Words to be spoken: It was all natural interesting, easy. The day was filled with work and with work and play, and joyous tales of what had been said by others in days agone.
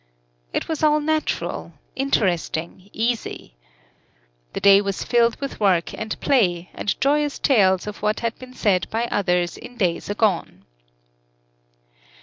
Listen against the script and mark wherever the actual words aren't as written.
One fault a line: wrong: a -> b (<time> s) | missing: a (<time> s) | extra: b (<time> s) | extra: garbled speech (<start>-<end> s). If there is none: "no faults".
missing: with work and (6.2 s)